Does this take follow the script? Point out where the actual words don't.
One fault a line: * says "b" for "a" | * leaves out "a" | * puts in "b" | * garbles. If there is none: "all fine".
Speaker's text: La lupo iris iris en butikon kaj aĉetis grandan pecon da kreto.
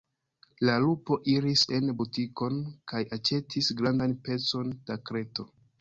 * leaves out "iris"